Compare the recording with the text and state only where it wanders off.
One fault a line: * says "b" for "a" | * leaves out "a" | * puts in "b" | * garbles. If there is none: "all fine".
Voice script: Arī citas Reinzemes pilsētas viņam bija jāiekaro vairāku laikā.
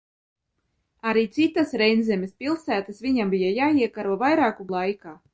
all fine